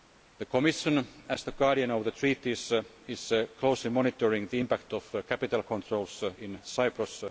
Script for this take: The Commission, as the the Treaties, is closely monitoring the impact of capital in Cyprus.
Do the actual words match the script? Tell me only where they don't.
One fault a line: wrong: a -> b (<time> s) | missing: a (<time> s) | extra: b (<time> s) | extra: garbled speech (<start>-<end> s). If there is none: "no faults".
extra: guardian of (1.5 s)
extra: controls (5.6 s)